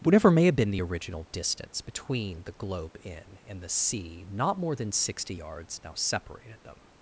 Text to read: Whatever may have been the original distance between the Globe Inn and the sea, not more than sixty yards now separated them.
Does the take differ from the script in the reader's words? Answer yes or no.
no